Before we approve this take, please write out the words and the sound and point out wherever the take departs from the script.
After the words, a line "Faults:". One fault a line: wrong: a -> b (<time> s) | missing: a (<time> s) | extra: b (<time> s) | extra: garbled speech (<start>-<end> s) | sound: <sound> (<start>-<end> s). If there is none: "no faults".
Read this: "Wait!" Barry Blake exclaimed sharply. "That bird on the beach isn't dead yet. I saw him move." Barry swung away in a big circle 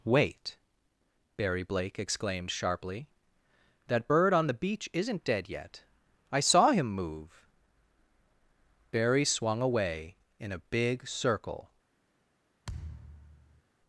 "Wait!" Barry Blake exclaimed sharply. "That bird on the beach isn't dead yet. I saw him move." Barry swung away in a big circle
Faults:
sound: thud (12.6-13.6 s)